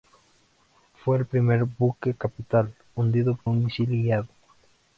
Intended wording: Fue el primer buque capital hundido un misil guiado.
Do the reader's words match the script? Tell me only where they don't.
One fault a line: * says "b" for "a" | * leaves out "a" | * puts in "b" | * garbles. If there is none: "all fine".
all fine